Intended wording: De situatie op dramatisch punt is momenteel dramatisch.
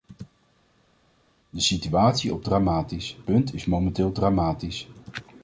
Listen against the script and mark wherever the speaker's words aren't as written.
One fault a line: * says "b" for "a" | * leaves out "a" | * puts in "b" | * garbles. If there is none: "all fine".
all fine